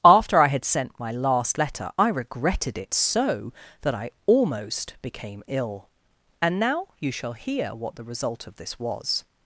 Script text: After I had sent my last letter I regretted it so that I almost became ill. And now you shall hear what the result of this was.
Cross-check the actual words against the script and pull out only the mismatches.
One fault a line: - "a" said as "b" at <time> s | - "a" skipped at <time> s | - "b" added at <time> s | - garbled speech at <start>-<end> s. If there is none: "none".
none